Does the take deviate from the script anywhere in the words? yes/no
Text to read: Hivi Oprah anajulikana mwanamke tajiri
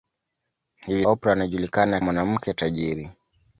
no